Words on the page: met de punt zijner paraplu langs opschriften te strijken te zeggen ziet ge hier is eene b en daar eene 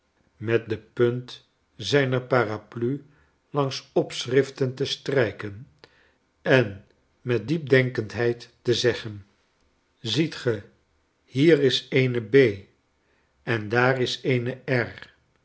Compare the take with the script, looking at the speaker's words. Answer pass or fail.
fail